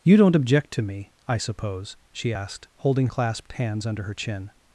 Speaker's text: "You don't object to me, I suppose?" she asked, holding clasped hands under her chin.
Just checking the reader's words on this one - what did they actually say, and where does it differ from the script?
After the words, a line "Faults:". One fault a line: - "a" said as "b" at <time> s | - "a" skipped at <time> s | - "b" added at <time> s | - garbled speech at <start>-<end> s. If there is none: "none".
"You don't object to me, I suppose?" she asked, holding clasped hands under her chin.
Faults:
none